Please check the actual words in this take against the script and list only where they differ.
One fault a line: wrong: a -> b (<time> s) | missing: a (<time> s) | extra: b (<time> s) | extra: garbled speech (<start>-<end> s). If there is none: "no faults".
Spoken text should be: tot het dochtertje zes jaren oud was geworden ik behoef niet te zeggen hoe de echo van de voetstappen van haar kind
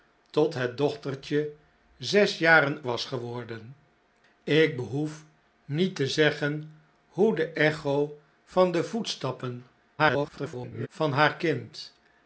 missing: oud (2.8 s)
extra: garbled speech (10.0-10.9 s)